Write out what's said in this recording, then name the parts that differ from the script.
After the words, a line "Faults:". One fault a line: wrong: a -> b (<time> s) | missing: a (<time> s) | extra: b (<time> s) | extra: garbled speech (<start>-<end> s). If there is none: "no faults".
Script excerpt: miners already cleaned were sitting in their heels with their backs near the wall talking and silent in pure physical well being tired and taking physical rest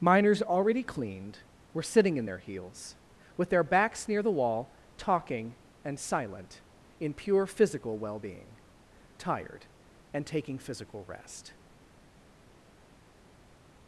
miners already cleaned were sitting in their heels with their backs near the wall talking and silent in pure physical well being tired and taking physical rest
Faults:
no faults